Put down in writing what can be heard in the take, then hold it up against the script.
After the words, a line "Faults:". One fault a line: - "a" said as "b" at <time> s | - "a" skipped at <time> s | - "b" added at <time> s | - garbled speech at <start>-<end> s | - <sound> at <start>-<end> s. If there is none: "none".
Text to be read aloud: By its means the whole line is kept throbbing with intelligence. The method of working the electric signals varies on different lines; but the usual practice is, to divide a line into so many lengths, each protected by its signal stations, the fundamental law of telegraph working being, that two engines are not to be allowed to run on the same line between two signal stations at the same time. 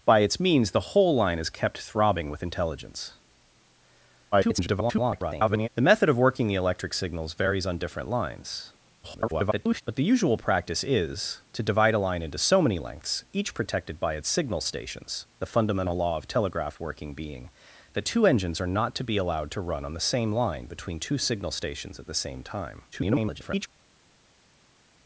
By its means the whole line is kept throbbing with intelligence. [garbled] The method of working the electric signals varies on different lines; [garbled] but the usual practice is, to divide a line into so many lengths, each protected by its signal stations, the fundamental law of telegraph working being, that two engines are not to be allowed to run on the same line between two signal stations at the same time. [garbled]
Faults:
- garbled speech at 4.3-5.7 s
- garbled speech at 9.0-9.8 s
- garbled speech at 22.9-23.7 s